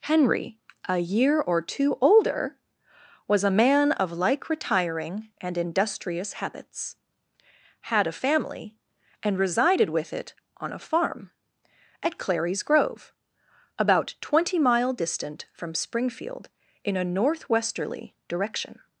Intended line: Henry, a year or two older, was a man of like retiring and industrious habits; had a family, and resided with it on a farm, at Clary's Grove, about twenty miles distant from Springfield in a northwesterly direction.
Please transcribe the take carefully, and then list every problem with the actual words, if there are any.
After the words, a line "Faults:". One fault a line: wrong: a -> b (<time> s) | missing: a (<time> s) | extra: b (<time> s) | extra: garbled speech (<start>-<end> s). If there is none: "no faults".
Henry, a year or two older, was a man of like retiring and industrious habits; had a family, and resided with it on a farm, at Clary's Grove, about twenty mile distant from Springfield in a northwesterly direction.
Faults:
wrong: miles -> mile (14.6 s)